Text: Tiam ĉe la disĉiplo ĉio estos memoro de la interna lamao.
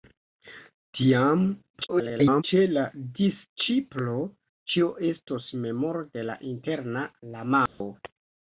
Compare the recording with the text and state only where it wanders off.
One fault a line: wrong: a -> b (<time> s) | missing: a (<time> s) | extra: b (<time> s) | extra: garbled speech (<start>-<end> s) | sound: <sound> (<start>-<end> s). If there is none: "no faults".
extra: garbled speech (1.7-2.4 s)
sound: dropout (7.7-7.8 s)